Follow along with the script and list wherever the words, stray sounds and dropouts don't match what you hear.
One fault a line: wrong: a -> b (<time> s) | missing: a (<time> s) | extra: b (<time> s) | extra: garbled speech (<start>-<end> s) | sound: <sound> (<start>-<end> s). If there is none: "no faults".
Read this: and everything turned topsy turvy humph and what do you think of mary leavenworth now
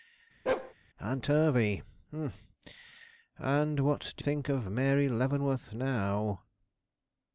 sound: bark (0.5-0.7 s)
missing: everything turned topsy (1.2 s)
missing: you (4.2 s)